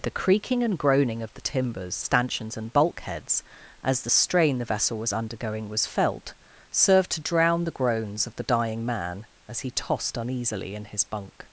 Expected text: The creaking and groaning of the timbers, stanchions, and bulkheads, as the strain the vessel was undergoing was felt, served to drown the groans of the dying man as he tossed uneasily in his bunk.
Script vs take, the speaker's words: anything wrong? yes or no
no